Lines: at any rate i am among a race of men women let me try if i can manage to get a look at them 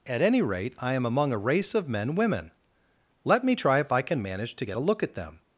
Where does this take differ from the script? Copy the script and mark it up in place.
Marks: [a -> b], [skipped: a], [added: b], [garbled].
at any rate i am among a race of men women let me try if i can manage to get a look at them